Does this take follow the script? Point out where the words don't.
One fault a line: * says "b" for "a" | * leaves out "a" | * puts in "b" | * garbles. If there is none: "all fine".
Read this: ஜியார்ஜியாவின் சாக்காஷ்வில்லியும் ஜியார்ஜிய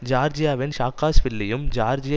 all fine